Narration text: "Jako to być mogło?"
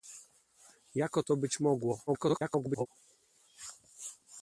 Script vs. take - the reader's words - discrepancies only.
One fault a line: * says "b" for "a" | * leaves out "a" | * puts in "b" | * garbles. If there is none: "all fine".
* garbles